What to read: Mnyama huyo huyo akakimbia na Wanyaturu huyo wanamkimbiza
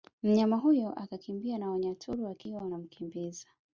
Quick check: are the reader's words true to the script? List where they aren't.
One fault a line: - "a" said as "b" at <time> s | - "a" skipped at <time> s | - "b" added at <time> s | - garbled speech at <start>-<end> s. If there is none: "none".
- "huyo" skipped at 0.9 s
- "huyo" said as "wakiwa" at 2.2 s